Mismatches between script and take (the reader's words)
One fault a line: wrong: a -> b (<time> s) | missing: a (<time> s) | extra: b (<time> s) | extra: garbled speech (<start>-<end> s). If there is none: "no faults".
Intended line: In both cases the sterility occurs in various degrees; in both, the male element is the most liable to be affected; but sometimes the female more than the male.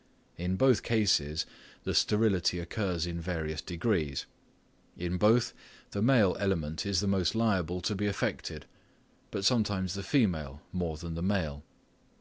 no faults